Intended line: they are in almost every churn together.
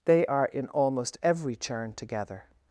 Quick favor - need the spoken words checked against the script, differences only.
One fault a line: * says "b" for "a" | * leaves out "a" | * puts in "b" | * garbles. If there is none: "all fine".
all fine